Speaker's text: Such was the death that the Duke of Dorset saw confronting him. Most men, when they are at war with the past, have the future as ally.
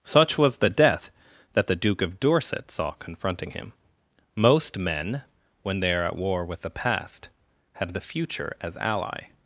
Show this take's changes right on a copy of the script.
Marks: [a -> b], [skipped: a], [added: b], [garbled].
Such was the death that the Duke of Dorset saw confronting him. Most men, when they are at war with the past, have the future as ally.